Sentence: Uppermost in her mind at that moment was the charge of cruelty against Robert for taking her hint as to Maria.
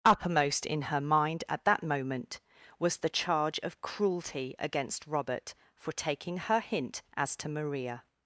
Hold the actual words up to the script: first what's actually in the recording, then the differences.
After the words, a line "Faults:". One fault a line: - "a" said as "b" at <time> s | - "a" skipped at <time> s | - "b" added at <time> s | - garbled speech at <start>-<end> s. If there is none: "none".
Uppermost in her mind at that moment was the charge of cruelty against Robert for taking her hint as to Maria.
Faults:
none